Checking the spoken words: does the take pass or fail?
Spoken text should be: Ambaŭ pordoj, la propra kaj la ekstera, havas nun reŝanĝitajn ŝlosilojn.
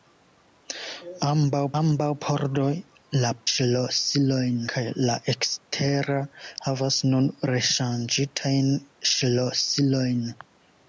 fail